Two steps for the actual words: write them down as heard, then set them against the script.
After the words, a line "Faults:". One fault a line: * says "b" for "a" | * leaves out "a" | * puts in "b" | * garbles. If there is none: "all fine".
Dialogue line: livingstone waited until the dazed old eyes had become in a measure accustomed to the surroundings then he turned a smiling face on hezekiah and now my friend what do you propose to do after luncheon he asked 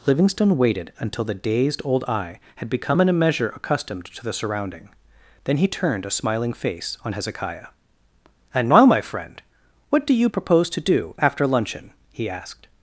livingstone waited until the dazed old eye had become in a measure accustomed to the surrounding then he turned a smiling face on hezekiah and now my friend what do you propose to do after luncheon he asked
Faults:
* says "eye" for "eyes"
* says "surrounding" for "surroundings"